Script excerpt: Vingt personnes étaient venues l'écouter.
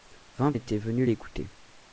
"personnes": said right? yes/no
no